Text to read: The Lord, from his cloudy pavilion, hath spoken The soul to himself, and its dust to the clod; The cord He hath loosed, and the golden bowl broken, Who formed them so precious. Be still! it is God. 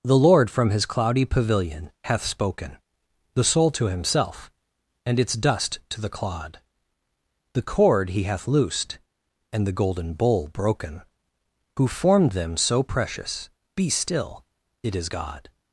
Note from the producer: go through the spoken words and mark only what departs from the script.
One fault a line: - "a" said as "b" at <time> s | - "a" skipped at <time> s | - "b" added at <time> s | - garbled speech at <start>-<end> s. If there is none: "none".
none